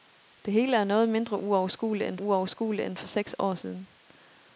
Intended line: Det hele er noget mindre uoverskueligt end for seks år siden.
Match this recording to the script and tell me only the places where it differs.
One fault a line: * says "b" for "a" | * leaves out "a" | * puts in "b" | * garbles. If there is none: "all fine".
* puts in "uoverskueligt end"